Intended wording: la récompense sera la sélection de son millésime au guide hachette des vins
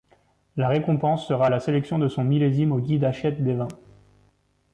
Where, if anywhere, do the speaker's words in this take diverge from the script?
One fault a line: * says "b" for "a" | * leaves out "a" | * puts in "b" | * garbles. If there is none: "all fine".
all fine